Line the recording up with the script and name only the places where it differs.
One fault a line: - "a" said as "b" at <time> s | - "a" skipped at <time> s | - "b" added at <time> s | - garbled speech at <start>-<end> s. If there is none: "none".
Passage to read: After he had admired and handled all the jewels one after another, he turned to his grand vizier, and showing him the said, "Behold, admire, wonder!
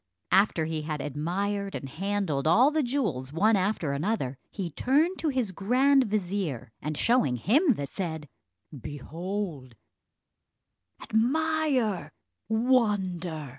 none